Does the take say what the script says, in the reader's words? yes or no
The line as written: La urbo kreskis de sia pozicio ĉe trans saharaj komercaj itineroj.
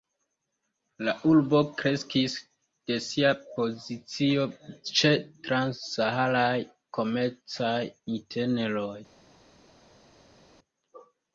yes